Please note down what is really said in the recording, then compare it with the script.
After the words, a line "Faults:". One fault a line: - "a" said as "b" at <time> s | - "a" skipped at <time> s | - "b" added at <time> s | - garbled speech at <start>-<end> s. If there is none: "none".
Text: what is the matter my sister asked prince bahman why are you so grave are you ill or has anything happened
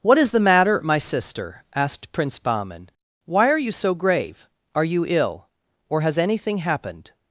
what is the matter my sister asked prince bahman why are you so grave are you ill or has anything happened
Faults:
none